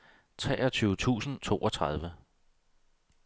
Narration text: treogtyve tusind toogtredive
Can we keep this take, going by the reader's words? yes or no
yes